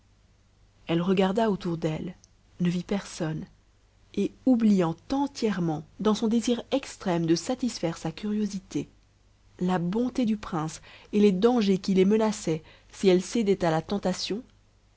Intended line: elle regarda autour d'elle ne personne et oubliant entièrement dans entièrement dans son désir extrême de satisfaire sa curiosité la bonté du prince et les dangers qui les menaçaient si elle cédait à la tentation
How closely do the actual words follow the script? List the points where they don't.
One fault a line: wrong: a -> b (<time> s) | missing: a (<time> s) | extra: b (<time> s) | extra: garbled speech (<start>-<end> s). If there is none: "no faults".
extra: vit (2.7 s)
missing: entièrement dans (6.2 s)